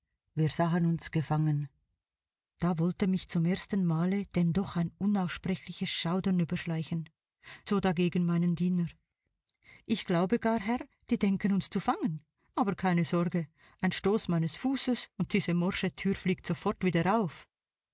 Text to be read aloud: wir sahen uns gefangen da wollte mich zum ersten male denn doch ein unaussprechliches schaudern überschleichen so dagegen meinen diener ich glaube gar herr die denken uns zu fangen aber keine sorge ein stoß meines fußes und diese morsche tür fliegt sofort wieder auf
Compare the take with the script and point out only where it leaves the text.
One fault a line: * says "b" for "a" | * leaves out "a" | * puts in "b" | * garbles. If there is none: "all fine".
all fine